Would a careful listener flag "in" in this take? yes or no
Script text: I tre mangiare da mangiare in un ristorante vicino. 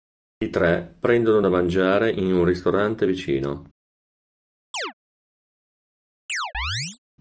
no